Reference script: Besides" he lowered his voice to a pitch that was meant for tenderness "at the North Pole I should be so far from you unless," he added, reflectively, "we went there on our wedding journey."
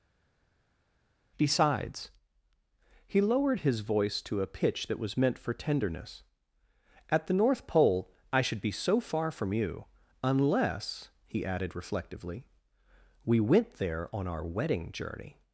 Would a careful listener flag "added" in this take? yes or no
no